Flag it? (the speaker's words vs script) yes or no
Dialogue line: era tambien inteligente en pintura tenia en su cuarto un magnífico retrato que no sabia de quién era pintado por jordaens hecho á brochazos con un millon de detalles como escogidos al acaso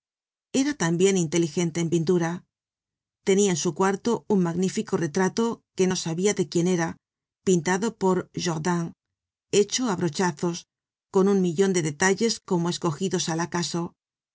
no